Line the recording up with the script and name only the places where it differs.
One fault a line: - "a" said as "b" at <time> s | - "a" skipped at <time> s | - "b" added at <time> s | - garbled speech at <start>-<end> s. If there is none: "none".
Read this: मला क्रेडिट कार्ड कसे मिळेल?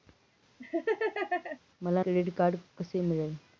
none